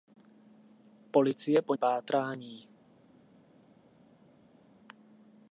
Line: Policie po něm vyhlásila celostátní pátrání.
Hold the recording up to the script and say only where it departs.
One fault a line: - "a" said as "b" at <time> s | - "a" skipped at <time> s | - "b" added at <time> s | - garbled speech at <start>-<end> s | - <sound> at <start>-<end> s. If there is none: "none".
- "něm vyhlásila celostátní" skipped at 1.7 s